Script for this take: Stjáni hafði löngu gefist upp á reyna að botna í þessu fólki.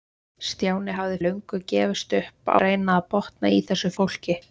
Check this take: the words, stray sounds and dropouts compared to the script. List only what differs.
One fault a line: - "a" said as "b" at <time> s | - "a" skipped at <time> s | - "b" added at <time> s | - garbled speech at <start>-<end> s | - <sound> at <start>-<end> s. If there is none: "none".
none